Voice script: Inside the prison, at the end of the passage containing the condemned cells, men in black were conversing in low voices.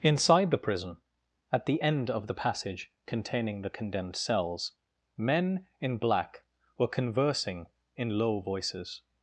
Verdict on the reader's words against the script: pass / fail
pass